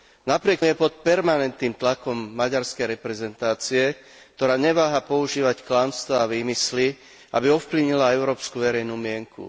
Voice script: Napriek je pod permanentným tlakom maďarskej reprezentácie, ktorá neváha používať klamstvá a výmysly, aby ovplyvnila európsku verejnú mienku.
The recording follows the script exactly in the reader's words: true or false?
true